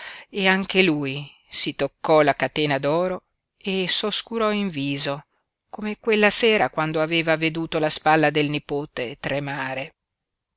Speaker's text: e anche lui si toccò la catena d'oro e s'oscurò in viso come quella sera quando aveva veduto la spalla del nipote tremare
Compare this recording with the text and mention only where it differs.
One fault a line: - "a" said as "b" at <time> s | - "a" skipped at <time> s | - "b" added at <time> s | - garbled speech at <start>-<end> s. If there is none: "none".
none